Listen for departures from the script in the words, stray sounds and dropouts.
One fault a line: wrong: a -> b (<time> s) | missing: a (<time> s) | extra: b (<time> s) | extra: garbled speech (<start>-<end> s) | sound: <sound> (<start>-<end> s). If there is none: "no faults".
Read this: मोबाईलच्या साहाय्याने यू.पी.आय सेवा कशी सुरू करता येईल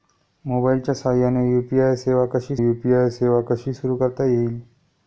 extra: यू.पी.आय सेवा कशी (2.6 s)